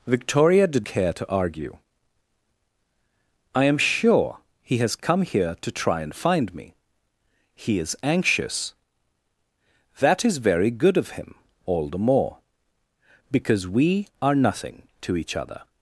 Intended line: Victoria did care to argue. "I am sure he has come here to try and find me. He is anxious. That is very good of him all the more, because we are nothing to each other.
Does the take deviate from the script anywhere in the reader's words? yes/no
no